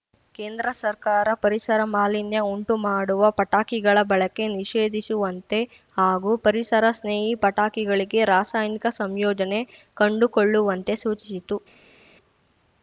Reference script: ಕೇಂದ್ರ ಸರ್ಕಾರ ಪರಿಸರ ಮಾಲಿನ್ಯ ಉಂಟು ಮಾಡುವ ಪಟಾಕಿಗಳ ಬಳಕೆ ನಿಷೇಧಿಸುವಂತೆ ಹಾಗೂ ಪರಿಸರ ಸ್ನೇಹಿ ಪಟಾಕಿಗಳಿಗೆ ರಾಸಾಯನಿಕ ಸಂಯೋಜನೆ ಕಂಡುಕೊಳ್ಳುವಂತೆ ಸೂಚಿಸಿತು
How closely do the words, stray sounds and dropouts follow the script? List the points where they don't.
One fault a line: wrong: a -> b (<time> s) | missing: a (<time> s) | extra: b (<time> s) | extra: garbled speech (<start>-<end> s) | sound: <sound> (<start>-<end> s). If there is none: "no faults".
no faults